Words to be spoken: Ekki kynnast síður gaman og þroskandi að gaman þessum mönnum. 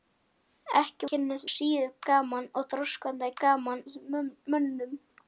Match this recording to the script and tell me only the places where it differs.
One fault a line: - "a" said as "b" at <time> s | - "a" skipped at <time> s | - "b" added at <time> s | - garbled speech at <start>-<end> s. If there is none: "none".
none